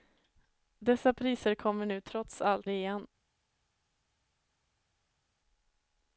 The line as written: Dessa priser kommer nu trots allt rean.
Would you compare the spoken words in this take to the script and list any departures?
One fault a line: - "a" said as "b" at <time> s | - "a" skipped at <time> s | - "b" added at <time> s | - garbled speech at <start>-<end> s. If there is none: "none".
none